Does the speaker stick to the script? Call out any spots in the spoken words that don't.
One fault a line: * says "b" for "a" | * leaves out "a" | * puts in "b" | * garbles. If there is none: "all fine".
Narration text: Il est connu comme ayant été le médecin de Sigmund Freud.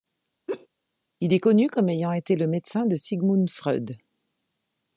all fine